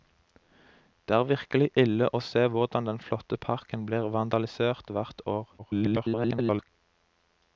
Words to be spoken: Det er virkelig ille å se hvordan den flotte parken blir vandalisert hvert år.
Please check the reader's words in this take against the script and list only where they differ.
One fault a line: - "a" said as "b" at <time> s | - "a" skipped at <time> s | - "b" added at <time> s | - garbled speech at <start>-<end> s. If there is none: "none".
- garbled speech at 5.6-6.7 s